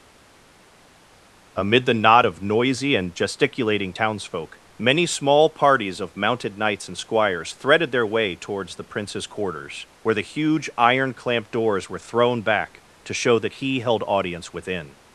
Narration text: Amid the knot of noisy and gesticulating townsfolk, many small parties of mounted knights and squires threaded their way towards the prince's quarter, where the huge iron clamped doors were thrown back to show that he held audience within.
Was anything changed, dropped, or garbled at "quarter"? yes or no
yes